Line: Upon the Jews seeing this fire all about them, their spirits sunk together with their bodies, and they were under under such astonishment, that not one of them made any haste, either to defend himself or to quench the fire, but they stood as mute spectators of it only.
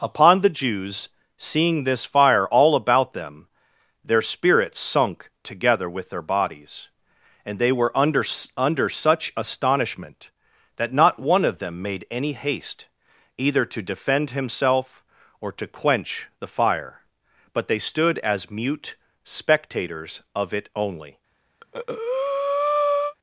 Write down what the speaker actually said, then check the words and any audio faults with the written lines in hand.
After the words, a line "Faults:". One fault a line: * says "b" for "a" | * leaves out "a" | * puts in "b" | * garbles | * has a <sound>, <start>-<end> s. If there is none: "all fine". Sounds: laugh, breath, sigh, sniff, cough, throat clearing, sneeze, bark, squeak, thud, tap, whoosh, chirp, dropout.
Upon the Jews seeing this fire all about them, their spirits sunk together with their bodies, and they were under under such astonishment, that not one of them made any haste, either to defend himself or to quench the fire, but they stood as mute spectators of it only.
Faults:
* has a breath, 21.6-23.1 s